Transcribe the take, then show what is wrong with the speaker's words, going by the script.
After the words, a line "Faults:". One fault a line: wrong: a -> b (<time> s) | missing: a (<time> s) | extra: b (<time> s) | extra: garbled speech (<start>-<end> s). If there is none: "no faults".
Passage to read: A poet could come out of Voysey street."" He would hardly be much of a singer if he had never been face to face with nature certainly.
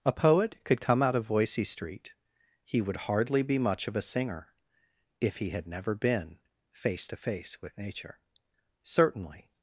A poet could come out of Voysey street."" He would hardly be much of a singer if he had never been face to face with nature certainly.
Faults:
no faults